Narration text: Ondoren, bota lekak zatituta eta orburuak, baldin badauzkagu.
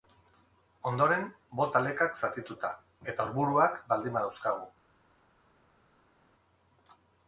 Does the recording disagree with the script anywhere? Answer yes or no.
no